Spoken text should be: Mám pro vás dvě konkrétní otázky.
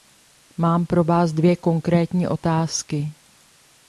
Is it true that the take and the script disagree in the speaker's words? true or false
false